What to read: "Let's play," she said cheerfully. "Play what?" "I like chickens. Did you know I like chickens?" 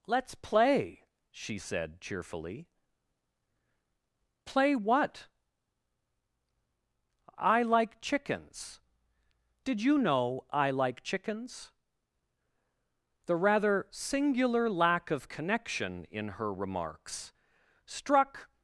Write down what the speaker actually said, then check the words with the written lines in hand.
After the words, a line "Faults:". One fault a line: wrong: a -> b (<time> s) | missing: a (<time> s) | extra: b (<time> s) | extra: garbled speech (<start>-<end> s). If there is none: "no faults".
"Let's play," she said cheerfully. "Play what?" "I like chickens. Did you know I like chickens?" The rather singular lack of connection in her remarks struck
Faults:
extra: The rather singular lack of connection in her remarks struck (13.3 s)